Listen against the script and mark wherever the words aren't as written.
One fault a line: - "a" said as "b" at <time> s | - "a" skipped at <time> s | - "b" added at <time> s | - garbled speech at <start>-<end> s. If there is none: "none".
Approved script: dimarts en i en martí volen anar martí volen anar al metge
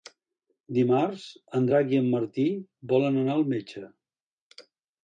- "drac" added at 1.7 s
- "martí volen anar" skipped at 3.4 s